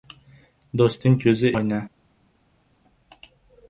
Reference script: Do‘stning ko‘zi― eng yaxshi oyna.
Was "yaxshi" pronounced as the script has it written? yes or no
no